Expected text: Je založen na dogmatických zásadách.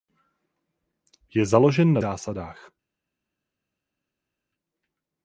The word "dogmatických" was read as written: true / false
false